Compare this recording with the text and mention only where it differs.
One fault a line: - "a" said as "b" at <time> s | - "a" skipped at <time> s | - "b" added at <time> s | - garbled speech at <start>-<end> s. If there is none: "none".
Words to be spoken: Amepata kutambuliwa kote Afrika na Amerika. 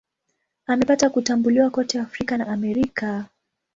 none